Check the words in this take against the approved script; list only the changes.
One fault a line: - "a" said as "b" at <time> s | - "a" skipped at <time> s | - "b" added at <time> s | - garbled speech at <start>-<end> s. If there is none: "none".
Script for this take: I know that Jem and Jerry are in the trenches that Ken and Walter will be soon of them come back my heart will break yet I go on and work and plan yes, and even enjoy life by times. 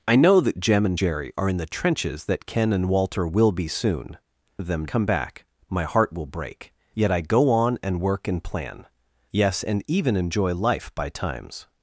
none